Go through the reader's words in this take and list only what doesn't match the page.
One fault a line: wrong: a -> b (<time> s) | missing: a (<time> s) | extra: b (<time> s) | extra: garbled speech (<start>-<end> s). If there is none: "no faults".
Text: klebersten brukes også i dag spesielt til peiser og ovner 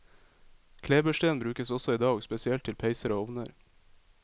no faults